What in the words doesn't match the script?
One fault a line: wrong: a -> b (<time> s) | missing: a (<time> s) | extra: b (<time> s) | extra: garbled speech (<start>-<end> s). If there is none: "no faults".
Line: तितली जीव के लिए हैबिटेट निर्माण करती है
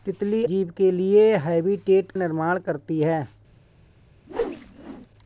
no faults